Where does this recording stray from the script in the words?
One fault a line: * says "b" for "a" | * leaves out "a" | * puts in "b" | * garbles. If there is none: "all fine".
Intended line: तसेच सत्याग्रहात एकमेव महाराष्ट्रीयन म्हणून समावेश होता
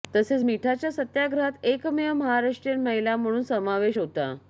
* puts in "मिठाच्या"
* puts in "महिला"